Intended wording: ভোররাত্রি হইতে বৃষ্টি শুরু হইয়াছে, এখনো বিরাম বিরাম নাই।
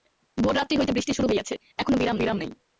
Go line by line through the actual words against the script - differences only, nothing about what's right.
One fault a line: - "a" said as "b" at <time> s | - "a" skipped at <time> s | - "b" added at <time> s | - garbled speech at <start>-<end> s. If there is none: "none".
none